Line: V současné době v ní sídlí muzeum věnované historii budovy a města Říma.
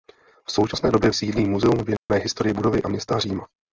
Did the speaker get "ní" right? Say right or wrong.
wrong